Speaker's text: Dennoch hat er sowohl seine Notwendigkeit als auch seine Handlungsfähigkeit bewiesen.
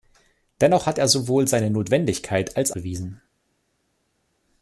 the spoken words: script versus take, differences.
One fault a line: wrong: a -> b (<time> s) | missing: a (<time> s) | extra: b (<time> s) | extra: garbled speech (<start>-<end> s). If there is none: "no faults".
missing: auch seine Handlungsfähigkeit (2.7 s)